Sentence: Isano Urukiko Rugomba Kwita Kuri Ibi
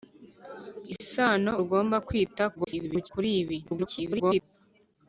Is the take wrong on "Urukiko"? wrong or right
wrong